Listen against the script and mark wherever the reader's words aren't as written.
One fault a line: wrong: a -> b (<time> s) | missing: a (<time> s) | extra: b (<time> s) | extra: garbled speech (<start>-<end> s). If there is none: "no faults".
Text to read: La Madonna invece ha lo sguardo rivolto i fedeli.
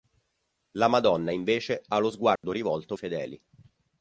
no faults